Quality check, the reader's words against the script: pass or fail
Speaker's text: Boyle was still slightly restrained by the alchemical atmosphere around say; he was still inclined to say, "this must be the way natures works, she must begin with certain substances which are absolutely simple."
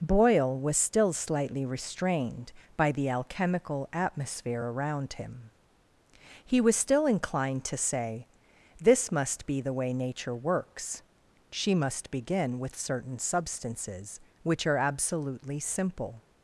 fail